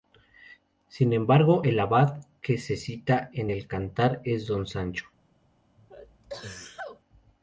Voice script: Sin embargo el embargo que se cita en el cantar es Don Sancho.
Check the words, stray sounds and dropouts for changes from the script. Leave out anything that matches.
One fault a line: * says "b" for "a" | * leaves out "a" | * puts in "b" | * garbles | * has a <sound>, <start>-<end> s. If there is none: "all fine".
* says "abad" for "embargo"
* has a sneeze, 5.8-7.0 s